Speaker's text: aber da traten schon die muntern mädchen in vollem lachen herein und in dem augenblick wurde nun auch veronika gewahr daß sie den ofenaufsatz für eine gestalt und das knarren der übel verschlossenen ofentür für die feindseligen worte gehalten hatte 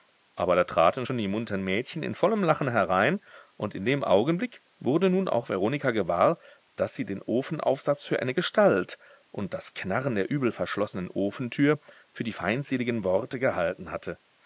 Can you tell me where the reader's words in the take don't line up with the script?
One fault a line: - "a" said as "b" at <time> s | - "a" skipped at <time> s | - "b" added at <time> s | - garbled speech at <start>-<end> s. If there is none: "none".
none